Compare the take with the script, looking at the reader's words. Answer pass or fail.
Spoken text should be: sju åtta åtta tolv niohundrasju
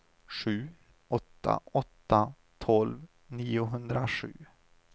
pass